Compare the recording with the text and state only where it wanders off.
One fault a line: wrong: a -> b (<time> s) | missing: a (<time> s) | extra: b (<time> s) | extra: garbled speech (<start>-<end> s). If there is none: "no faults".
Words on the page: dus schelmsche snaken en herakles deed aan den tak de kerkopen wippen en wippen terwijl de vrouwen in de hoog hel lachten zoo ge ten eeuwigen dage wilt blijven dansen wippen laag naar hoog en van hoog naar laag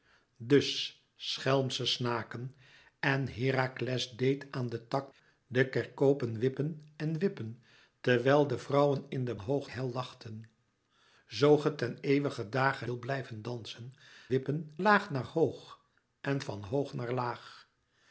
no faults